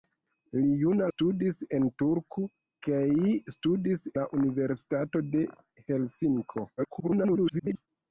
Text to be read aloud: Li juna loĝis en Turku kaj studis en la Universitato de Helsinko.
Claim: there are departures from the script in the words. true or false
true